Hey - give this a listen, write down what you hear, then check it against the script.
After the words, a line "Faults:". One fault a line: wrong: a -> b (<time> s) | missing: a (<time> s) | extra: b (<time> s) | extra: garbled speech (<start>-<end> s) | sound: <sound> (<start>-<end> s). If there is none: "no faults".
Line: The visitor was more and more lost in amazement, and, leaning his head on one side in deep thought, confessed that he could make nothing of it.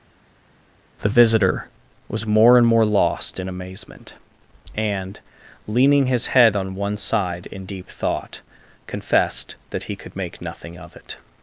The visitor was more and more lost in amazement, and, leaning his head on one side in deep thought, confessed that he could make nothing of it.
Faults:
no faults